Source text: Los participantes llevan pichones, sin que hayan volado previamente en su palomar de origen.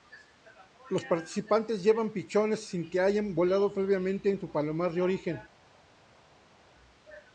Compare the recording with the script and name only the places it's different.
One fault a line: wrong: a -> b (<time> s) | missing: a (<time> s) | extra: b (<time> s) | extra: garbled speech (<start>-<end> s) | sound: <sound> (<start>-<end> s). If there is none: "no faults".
no faults